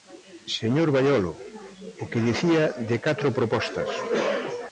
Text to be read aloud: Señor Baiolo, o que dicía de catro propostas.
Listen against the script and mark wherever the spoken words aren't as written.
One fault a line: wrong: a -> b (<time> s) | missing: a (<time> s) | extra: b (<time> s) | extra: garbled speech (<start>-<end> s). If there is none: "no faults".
no faults